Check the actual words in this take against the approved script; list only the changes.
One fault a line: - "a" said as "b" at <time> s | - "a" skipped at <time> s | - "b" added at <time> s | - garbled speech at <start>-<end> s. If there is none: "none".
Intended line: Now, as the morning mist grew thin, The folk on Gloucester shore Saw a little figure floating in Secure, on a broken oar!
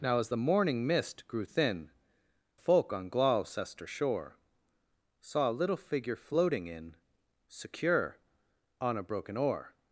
- "The" skipped at 1.9 s